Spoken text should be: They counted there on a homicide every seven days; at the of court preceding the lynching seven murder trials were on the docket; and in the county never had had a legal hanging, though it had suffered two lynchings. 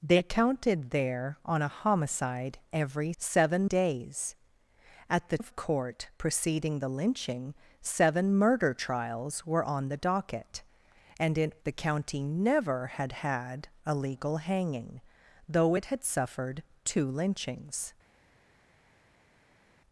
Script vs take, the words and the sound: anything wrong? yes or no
no